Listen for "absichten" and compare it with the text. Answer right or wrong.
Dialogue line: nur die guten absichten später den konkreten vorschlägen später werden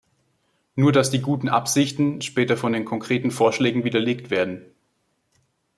right